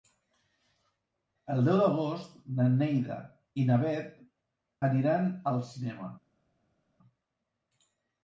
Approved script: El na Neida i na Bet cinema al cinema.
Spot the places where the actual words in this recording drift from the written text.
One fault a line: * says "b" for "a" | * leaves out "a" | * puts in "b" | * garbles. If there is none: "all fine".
* puts in "deu d'agost"
* says "aniran" for "cinema"